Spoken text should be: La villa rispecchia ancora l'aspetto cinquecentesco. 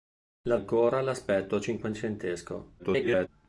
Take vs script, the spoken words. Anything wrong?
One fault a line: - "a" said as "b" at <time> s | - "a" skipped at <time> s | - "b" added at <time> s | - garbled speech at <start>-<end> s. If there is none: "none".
- "villa rispecchia" skipped at 0.6 s
- garbled speech at 2.8-3.3 s